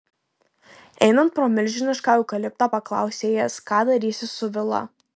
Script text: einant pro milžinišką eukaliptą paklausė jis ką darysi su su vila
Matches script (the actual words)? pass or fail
fail